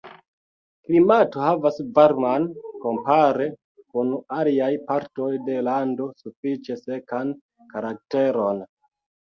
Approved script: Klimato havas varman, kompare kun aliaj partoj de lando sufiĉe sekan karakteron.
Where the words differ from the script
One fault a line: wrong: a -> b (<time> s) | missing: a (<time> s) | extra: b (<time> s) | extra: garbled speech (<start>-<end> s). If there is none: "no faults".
no faults